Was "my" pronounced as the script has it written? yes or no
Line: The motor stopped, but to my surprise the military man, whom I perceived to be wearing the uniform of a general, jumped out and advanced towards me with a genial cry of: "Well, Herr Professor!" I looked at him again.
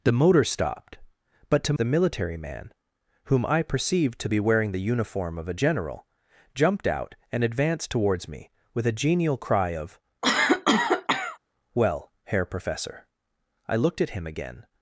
no